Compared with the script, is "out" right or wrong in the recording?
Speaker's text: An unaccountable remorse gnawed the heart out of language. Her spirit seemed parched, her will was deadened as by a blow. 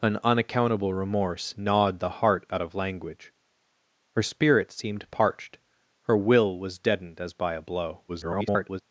right